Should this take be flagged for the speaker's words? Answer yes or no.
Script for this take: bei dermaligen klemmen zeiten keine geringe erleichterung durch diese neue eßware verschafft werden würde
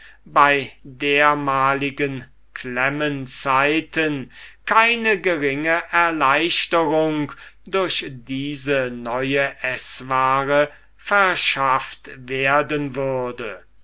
no